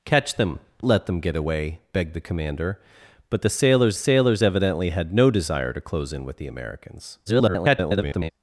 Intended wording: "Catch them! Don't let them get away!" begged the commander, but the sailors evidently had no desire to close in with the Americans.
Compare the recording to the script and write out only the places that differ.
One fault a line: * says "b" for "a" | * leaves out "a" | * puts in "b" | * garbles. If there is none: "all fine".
* leaves out "Don't"
* puts in "sailors"
* garbles